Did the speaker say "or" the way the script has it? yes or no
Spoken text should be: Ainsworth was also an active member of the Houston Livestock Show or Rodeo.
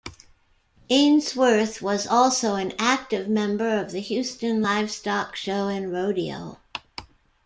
no